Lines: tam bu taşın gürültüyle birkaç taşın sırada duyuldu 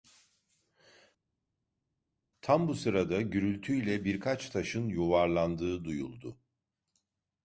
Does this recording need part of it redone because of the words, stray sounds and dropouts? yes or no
yes